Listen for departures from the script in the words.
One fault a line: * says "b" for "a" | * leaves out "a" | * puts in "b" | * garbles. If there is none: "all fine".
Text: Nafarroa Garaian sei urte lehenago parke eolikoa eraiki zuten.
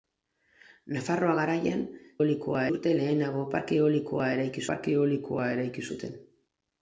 * says "eolikoa" for "sei"
* puts in "parke eolikoa eraiki"